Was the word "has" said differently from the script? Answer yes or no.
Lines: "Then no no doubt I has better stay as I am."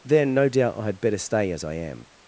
yes